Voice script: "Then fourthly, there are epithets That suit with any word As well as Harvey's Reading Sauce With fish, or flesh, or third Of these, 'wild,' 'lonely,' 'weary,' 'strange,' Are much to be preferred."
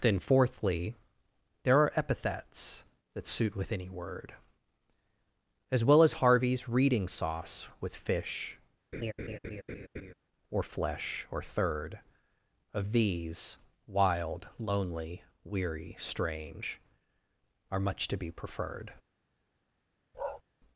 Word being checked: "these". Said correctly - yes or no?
yes